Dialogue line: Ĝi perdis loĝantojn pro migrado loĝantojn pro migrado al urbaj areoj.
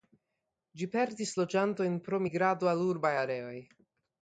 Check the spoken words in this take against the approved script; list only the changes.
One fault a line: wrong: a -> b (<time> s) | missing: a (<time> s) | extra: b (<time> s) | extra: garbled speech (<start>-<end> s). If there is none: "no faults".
missing: loĝantojn pro migrado (2.7 s)